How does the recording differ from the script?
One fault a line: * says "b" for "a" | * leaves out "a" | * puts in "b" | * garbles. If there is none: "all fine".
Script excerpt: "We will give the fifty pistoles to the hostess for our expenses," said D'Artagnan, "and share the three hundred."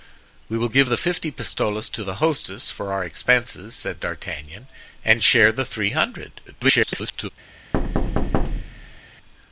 * garbles